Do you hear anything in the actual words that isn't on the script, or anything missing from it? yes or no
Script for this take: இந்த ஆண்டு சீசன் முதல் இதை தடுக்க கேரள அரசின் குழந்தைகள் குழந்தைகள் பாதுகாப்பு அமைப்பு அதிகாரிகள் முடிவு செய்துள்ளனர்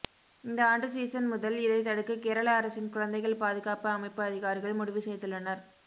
yes